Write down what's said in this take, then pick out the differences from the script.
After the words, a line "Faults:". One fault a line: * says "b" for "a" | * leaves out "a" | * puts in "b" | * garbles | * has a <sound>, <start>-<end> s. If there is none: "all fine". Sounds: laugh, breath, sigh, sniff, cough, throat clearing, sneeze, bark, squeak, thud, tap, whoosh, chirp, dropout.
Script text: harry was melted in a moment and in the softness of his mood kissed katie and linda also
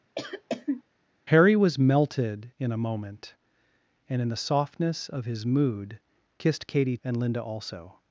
harry was melted in a moment and in the softness of his mood kissed katie and linda also
Faults:
* has a cough, 0.1-0.8 s